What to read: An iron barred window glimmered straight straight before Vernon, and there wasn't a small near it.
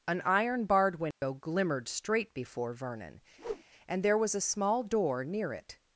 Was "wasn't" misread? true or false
true